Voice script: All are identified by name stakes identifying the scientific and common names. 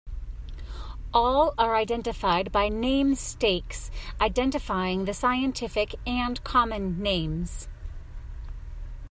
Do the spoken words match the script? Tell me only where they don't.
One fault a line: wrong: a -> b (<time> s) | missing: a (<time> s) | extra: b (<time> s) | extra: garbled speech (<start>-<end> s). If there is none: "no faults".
no faults